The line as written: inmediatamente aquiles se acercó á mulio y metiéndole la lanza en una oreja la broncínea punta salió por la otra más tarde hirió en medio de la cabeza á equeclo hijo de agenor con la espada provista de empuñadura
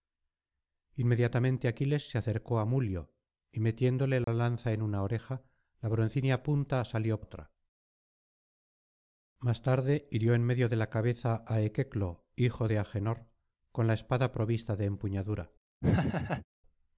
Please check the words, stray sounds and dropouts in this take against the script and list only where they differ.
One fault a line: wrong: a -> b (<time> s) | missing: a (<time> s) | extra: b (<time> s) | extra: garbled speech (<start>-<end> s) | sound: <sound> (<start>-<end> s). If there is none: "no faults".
sound: dropout (4.2-4.3 s)
missing: por la (7.2 s)
sound: laugh (15.8-16.5 s)